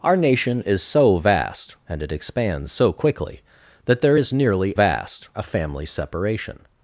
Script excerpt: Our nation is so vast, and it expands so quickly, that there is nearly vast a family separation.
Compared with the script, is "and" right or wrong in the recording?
right